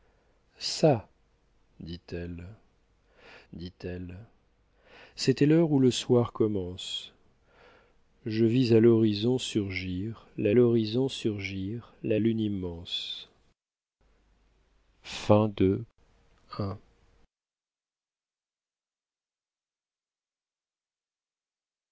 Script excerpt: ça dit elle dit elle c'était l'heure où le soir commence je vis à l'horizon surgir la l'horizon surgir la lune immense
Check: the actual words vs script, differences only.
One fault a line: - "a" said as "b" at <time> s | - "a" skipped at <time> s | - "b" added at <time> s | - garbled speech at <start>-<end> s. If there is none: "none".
none